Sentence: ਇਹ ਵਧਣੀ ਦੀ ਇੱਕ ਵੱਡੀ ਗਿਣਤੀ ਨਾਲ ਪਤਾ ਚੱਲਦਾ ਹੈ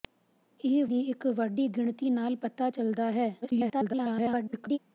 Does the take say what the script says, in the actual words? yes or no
no